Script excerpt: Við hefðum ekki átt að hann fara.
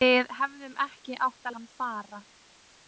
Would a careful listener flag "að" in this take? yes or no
no